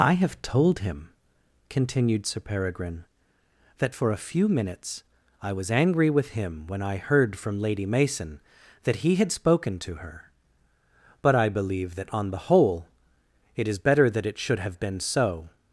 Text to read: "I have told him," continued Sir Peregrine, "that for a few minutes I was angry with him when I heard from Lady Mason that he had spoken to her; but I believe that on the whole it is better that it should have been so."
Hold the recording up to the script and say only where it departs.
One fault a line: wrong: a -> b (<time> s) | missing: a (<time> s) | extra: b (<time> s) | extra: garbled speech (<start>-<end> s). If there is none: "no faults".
no faults